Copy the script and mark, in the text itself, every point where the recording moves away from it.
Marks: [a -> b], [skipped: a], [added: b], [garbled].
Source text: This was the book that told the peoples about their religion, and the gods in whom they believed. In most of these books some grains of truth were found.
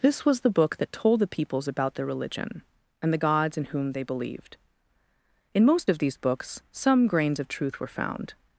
This was the book that told the peoples about their religion, and the gods in whom they believed. In most of these books some grains of truth were found.